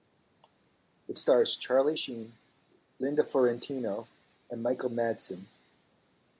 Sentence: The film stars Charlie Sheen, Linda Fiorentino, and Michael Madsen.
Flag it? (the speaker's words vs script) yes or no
yes